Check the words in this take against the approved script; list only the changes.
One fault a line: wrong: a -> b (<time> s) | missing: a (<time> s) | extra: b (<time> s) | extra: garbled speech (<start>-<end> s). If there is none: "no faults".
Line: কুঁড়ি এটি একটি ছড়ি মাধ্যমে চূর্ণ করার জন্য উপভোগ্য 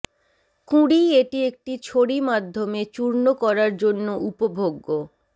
no faults